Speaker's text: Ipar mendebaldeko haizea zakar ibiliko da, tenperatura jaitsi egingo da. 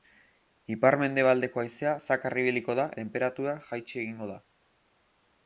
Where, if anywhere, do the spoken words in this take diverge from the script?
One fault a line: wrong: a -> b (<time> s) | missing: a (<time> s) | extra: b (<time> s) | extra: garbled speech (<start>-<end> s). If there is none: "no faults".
no faults